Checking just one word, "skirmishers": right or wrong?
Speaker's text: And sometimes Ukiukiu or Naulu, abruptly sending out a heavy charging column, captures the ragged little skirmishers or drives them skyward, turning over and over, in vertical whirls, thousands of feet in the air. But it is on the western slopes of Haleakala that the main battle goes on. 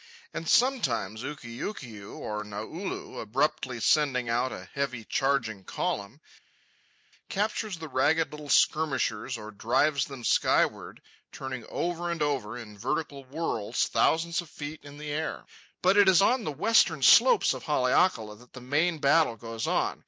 right